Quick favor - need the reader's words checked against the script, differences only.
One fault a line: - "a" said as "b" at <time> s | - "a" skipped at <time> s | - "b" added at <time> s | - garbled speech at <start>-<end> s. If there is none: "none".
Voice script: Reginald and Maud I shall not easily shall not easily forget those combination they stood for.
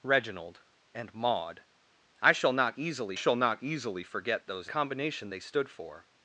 none